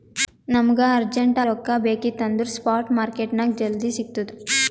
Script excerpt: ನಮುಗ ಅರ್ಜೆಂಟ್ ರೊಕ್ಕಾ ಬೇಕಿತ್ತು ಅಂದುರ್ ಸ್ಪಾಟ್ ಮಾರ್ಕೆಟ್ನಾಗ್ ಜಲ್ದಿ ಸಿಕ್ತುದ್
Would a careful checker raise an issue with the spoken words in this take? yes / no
no